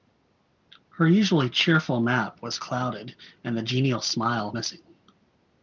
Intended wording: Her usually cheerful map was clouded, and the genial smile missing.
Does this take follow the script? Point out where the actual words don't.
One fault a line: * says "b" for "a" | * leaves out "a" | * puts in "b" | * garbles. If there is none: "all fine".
all fine